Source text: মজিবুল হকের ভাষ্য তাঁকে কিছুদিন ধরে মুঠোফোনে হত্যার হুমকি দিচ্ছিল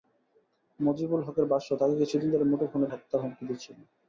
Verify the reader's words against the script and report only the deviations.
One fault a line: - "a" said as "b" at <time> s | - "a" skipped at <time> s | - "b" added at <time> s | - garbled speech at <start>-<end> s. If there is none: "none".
none